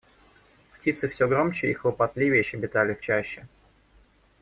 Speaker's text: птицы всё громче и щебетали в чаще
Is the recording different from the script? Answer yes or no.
yes